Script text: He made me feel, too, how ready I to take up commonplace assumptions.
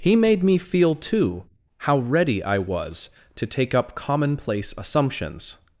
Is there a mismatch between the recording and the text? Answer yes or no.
yes